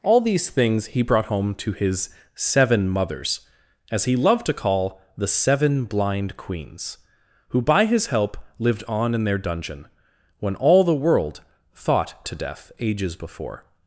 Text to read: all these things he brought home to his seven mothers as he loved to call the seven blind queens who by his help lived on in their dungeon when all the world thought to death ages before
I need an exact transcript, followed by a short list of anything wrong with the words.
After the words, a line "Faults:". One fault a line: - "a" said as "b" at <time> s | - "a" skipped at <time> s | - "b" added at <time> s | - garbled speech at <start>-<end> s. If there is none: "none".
all these things he brought home to his seven mothers as he loved to call the seven blind queens who by his help lived on in their dungeon when all the world thought to death ages before
Faults:
none